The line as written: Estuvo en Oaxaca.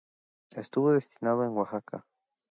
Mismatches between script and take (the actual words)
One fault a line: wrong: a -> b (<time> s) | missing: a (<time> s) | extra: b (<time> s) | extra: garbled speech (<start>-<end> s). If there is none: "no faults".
extra: destinado (0.9 s)